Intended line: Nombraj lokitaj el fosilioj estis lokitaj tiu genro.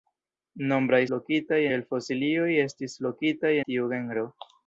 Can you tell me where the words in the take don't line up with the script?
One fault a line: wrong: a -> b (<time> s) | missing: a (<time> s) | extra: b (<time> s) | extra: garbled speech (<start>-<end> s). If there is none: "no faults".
no faults